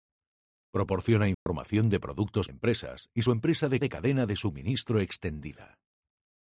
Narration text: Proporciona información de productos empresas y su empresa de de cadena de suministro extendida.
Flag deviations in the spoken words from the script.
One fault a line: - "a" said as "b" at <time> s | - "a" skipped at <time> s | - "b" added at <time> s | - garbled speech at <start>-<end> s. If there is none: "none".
none